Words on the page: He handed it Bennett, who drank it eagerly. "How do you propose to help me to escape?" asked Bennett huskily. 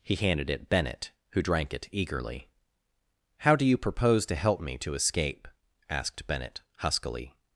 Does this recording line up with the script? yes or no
yes